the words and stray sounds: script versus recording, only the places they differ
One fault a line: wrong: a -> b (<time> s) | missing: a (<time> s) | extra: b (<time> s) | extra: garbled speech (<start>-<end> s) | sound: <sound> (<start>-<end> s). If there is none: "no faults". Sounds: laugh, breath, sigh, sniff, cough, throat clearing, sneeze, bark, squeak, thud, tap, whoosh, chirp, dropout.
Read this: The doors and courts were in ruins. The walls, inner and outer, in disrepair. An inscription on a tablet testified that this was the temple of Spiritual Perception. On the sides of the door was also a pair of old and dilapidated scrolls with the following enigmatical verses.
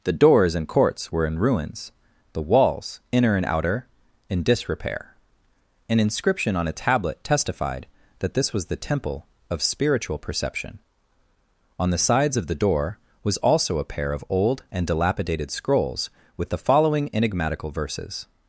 no faults